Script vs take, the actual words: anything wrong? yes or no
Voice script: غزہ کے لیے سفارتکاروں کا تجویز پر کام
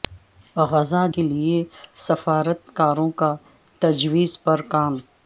no